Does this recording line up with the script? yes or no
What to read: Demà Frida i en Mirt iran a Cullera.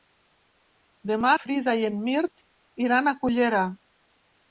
yes